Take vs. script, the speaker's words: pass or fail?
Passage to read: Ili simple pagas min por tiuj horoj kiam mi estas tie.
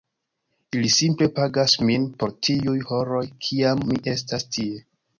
pass